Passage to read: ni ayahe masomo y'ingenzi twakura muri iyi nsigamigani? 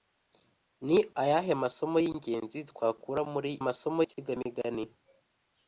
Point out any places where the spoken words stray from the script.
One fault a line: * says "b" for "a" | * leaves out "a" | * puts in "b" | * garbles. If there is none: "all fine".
* says "masomo" for "iyi"